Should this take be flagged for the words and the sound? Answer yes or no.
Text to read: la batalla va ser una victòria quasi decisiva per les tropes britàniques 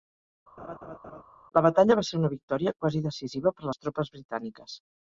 yes